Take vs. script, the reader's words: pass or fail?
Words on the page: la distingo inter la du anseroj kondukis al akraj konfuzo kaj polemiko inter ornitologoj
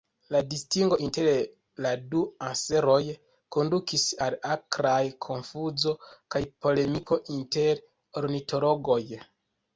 pass